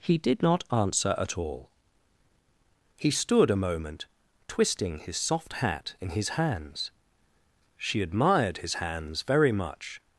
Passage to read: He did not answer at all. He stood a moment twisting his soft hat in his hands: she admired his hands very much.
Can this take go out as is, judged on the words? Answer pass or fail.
pass